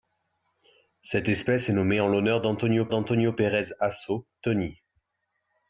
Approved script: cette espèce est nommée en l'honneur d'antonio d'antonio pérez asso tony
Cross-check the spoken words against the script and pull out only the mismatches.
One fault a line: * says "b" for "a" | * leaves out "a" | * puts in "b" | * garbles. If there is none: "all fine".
all fine